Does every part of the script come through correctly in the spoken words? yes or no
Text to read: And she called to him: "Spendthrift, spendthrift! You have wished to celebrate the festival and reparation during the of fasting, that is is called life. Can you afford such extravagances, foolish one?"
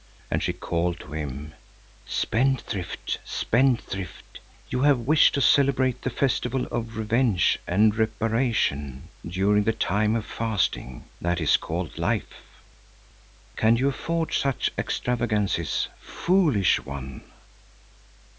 no